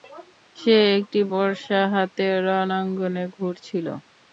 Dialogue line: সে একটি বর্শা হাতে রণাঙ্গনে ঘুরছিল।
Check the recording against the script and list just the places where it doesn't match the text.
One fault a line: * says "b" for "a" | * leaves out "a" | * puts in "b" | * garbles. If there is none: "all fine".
all fine